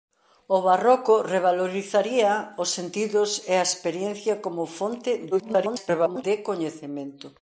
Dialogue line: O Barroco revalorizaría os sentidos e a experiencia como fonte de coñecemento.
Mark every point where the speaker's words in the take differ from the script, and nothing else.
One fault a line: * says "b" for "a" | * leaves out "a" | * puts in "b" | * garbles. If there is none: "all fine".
* garbles